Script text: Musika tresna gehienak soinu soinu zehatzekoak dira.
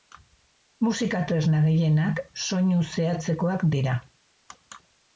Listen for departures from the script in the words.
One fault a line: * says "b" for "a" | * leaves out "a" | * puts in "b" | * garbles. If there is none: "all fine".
* leaves out "soinu"